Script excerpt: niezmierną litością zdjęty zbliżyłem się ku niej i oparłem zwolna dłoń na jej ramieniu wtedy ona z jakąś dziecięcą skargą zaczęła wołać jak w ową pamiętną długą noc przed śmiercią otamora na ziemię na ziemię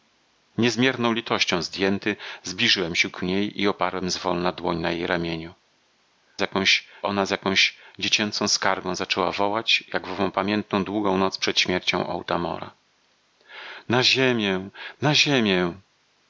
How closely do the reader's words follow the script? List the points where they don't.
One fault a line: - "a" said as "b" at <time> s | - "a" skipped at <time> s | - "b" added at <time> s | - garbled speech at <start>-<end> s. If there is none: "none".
- "wtedy" said as "jakąś" at 6.4 s